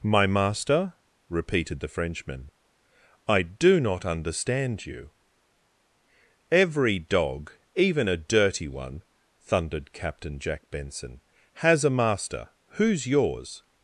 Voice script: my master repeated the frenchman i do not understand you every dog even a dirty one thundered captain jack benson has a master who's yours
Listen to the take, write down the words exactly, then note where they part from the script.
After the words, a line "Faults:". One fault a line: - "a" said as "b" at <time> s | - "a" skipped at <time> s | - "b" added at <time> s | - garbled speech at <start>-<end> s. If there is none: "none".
my master repeated the frenchman i do not understand you every dog even a dirty one thundered captain jack benson has a master who's yours
Faults:
none